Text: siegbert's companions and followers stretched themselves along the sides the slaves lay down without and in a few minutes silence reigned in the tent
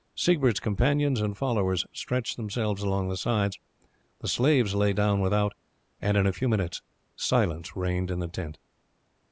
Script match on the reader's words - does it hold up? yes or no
yes